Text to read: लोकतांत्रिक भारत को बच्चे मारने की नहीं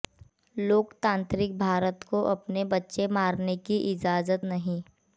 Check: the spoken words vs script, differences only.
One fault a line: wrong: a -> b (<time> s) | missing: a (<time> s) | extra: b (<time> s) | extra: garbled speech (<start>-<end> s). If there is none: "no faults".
extra: अपने (2.3 s)
extra: इजाजत (3.9 s)